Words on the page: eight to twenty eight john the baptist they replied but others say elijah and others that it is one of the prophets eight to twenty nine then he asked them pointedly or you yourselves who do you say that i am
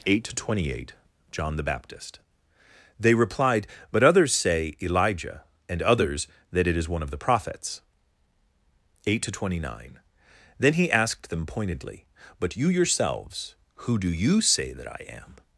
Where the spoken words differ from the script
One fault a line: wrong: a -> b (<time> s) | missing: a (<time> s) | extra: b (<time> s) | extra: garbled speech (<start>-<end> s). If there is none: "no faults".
wrong: or -> but (12.4 s)